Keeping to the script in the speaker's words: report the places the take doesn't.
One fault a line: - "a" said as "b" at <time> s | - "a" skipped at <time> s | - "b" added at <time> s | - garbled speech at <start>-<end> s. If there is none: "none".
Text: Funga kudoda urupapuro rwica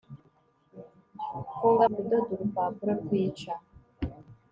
none